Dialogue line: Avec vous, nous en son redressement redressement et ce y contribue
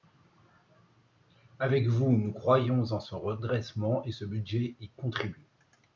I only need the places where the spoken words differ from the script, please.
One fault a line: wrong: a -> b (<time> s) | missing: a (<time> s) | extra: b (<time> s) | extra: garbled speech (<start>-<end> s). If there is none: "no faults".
extra: croyons (2.3 s)
missing: redressement (4.0 s)
extra: budget (4.2 s)